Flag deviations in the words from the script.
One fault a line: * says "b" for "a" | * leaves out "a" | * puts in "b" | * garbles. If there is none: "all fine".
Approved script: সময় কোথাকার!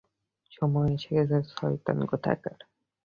* puts in "এসে গেছে শয়তান"